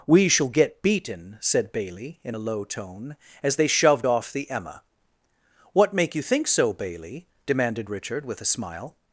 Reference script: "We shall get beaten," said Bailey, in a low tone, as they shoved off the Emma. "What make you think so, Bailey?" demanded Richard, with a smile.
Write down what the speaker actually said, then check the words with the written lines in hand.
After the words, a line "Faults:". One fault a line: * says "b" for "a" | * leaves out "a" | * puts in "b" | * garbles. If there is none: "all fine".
"We shall get beaten," said Bailey, in a low tone, as they shoved off the Emma. "What make you think so, Bailey?" demanded Richard, with a smile.
Faults:
all fine